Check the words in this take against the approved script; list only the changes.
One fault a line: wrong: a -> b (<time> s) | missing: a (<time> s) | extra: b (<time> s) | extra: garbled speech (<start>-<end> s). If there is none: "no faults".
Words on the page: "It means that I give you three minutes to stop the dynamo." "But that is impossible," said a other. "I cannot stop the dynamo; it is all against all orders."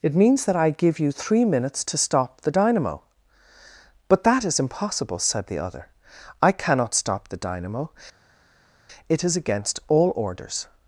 wrong: a -> the (5.5 s)
missing: all (9.3 s)